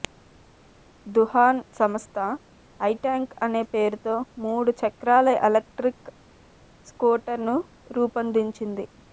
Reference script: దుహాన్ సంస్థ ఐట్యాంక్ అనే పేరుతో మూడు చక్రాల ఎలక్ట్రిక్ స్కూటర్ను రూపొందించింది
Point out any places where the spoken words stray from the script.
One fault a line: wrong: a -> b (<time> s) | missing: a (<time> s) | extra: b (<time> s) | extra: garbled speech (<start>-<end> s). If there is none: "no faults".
no faults